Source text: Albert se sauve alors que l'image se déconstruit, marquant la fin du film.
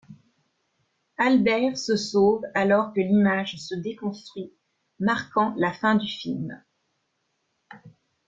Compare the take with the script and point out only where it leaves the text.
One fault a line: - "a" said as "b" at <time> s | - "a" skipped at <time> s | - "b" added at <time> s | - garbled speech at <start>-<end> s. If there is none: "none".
none